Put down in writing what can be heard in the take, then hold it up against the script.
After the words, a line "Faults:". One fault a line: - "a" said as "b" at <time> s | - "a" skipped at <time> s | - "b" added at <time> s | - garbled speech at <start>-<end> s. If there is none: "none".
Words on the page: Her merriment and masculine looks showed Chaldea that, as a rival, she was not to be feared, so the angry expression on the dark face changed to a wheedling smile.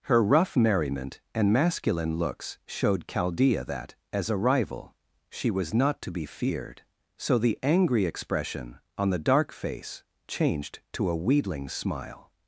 Her rough merriment and masculine looks showed Chaldea that, as a rival, she was not to be feared, so the angry expression on the dark face changed to a wheedling smile.
Faults:
- "rough" added at 0.2 s